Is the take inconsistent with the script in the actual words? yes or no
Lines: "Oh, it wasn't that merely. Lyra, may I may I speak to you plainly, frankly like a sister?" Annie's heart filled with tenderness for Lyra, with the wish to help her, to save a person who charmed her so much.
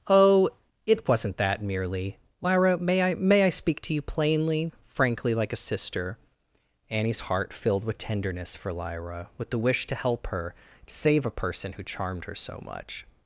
no